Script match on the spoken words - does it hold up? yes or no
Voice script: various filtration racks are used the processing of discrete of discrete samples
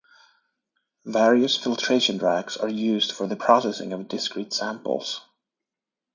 no